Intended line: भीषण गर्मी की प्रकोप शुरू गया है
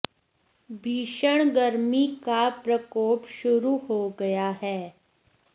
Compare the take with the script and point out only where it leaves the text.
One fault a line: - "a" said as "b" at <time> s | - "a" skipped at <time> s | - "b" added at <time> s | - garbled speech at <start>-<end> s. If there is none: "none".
- "की" said as "का" at 2.2 s
- "हो" added at 3.9 s